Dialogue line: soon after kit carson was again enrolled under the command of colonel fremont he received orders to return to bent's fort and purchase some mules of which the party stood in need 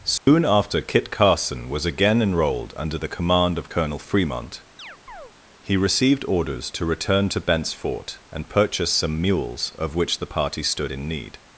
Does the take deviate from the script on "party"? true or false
false